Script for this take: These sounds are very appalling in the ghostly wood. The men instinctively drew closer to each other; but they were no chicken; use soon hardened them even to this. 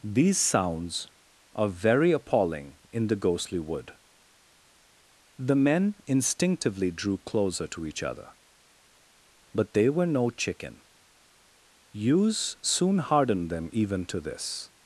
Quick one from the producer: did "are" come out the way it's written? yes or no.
yes